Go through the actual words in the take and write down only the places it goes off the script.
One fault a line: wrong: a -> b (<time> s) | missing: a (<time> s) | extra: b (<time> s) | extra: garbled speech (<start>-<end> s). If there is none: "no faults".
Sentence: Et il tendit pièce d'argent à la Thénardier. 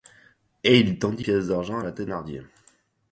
no faults